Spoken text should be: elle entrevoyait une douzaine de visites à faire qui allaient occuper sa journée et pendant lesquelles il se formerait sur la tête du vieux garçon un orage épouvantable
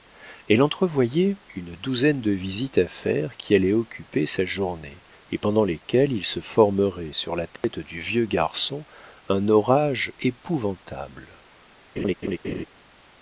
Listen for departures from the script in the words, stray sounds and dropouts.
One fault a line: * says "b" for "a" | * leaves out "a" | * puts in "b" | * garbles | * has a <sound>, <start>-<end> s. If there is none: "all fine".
* has a dropout, 7.6-7.6 s
* has a laugh, 12.0-12.7 s